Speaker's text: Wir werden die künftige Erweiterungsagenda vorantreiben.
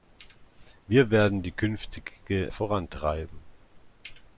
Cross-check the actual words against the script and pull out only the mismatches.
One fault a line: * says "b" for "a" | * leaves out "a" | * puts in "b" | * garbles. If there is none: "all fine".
* leaves out "Erweiterungsagenda"